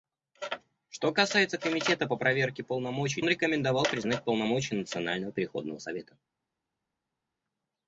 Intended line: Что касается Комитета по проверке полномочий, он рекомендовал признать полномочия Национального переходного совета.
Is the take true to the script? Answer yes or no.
yes